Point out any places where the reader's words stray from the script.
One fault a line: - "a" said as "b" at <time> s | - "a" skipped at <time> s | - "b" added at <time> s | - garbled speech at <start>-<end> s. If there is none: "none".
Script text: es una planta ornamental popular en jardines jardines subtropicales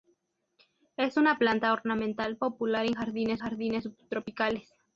none